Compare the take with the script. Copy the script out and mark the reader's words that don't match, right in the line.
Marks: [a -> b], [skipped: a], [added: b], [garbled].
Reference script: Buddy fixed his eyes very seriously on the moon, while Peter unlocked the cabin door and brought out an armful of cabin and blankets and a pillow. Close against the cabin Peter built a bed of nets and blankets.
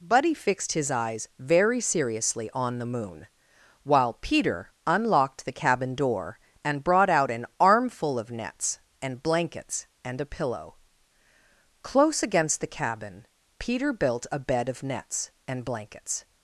Buddy fixed his eyes very seriously on the moon, while Peter unlocked the cabin door and brought out an armful of [cabin -> nets] and blankets and a pillow. Close against the cabin Peter built a bed of nets and blankets.